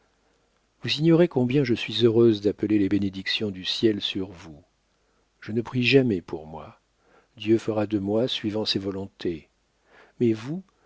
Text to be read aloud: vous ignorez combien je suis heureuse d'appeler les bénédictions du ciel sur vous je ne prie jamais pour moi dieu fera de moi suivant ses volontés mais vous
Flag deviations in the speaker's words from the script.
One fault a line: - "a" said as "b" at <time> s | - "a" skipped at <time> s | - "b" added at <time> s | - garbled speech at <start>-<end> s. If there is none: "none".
none